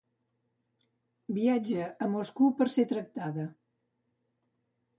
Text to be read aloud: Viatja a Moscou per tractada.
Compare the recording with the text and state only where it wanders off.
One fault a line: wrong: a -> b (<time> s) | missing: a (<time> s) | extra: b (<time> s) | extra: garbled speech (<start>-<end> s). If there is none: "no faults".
extra: ser (2.8 s)